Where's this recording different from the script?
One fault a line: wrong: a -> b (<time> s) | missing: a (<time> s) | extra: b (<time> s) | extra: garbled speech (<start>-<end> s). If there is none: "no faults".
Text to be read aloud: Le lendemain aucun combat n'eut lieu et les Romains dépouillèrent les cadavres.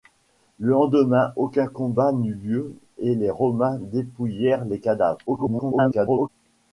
extra: garbled speech (5.3-6.3 s)